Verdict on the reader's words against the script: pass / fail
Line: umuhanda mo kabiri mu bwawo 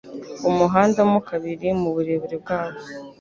fail